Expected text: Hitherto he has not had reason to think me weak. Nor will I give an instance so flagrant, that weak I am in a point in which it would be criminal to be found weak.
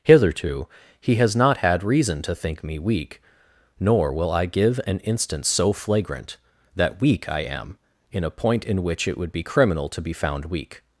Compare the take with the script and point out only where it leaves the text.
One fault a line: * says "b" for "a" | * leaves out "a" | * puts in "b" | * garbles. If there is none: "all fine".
all fine